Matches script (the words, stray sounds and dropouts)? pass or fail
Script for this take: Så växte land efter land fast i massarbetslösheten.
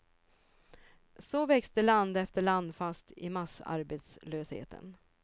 pass